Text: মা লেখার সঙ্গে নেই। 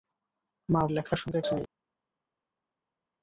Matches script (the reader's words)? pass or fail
pass